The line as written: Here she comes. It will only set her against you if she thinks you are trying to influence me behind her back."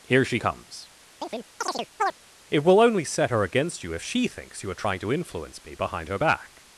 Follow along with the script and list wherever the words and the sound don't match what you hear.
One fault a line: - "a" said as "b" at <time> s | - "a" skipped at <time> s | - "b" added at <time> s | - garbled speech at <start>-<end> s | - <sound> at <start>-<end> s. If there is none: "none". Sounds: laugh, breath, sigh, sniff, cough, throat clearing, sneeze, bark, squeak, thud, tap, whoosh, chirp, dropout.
- chirp at 1.2-2.1 s